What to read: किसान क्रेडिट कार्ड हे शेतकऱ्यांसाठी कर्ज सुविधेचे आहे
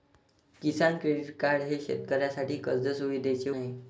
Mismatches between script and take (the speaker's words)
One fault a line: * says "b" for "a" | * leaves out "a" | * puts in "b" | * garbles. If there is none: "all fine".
all fine